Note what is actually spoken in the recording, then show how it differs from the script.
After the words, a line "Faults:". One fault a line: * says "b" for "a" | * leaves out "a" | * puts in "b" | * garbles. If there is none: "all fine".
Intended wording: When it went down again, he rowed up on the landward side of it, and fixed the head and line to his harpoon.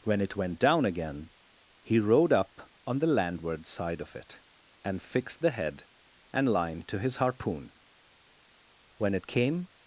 When it went down again, he rowed up on the landward side of it, and fixed the head and line to his harpoon. When it came
Faults:
* puts in "When it came"